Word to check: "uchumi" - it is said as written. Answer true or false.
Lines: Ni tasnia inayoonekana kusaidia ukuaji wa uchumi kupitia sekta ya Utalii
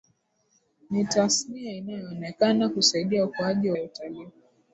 false